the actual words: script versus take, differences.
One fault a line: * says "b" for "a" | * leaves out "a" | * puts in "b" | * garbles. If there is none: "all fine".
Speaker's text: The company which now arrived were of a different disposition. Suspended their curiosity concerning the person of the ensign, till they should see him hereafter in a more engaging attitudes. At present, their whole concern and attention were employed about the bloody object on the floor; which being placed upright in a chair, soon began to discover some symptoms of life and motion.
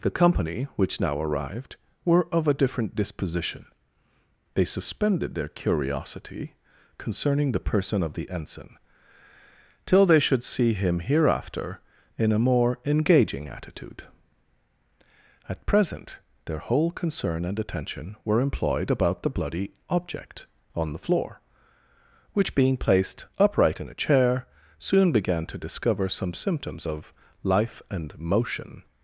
* puts in "They"
* says "attitude" for "attitudes"